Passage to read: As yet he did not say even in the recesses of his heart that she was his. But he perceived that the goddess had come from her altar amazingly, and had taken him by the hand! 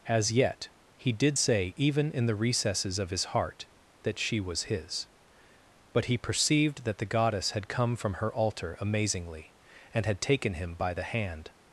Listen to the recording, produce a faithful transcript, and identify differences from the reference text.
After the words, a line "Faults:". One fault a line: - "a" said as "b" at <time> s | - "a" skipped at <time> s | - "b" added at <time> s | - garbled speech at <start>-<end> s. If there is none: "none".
As yet he did say even in the recesses of his heart that she was his. But he perceived that the goddess had come from her altar amazingly, and had taken him by the hand!
Faults:
- "not" skipped at 1.4 s